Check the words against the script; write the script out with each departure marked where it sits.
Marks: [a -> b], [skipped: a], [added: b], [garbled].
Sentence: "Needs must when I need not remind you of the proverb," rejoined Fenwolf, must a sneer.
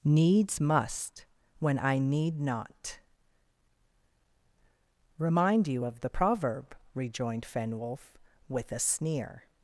"Needs must when I need not remind you of the proverb," rejoined Fenwolf, [must -> with] a sneer.